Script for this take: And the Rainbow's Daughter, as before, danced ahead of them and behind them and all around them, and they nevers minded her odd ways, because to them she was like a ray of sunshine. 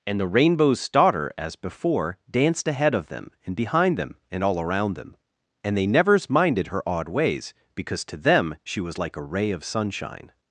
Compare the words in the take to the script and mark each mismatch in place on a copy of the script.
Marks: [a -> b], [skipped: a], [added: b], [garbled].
And the Rainbow's Daughter, as before, danced ahead of them and behind them and all around them, and they nevers minded her odd ways, because to them she was like a ray of sunshine.